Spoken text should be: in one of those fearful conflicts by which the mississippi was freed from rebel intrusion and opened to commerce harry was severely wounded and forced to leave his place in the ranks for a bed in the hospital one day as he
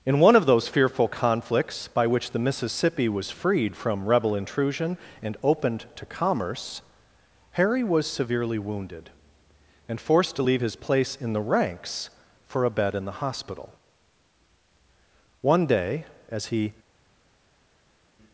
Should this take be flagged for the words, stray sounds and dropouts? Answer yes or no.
no